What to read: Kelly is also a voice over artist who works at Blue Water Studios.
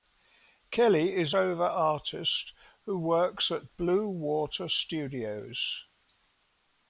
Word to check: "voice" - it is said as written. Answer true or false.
false